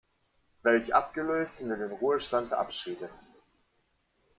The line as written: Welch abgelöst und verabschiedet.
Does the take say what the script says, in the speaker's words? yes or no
no